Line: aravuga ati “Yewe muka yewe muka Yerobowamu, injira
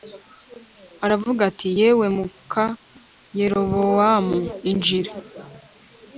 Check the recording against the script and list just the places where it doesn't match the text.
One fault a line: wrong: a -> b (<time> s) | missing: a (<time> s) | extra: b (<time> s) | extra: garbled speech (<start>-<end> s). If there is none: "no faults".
missing: yewe muka (2.6 s)